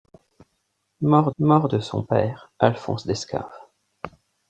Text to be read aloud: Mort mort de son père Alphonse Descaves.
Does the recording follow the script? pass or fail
pass